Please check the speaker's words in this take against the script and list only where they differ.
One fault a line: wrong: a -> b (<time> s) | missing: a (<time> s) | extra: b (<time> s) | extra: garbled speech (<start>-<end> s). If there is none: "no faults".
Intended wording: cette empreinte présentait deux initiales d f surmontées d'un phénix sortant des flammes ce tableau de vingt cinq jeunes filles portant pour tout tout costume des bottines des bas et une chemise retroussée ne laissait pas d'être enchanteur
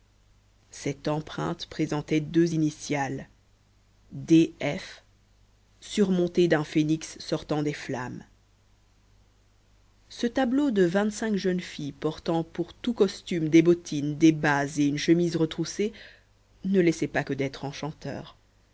missing: tout (12.9 s)
extra: que (17.2 s)